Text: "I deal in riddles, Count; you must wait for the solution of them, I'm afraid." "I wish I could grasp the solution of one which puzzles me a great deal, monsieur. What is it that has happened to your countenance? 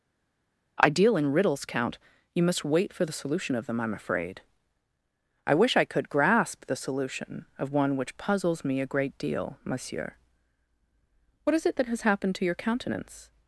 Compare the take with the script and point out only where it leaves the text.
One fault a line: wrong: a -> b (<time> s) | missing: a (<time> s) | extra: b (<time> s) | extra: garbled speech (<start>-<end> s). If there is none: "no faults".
no faults